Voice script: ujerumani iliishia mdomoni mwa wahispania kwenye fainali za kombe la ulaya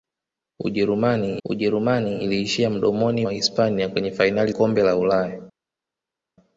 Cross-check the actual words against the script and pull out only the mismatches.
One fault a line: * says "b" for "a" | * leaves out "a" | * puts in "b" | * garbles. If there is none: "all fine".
* puts in "ujerumani"
* leaves out "mwa"
* leaves out "za"